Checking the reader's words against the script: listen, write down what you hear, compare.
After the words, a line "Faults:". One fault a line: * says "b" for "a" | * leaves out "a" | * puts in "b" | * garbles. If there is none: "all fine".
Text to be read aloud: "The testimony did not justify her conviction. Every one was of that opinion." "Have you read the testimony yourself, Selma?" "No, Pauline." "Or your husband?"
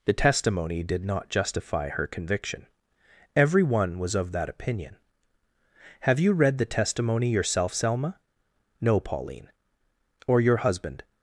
"The testimony did not justify her conviction. Every one was of that opinion." "Have you read the testimony yourself, Selma?" "No, Pauline." "Or your husband?"
Faults:
all fine